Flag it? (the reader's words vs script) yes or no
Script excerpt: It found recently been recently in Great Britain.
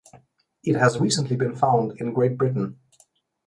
yes